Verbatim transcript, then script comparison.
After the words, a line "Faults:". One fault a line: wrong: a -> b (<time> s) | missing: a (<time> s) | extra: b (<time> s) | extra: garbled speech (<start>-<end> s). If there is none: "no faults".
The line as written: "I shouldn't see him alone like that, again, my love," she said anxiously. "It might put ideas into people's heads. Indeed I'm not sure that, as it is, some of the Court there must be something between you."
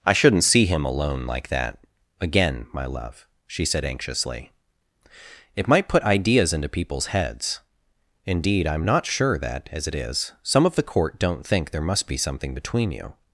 "I shouldn't see him alone like that, again, my love," she said anxiously. "It might put ideas into people's heads. Indeed I'm not sure that, as it is, some of the Court don't think there must be something between you."
Faults:
extra: don't think (11.2 s)